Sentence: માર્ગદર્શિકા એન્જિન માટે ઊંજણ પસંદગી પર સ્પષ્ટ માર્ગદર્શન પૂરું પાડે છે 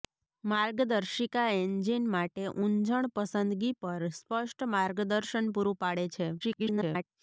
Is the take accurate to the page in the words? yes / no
no